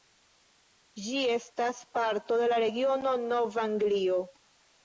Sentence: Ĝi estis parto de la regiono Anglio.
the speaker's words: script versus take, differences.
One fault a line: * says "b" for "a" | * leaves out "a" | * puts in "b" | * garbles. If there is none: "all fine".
* says "estas" for "estis"
* puts in "Nov"